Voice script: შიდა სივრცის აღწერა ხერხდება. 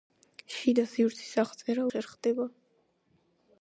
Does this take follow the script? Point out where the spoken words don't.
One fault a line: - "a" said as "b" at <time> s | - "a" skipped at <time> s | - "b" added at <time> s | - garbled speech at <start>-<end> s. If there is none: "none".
none